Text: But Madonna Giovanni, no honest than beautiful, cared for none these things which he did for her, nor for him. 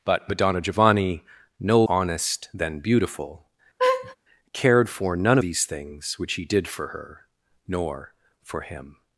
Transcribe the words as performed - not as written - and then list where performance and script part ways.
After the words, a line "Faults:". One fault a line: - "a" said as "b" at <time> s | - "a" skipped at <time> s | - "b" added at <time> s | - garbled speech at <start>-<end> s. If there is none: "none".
But Madonna Giovanni, no honest than beautiful, cared for none these things which he did for her, nor for him.
Faults:
none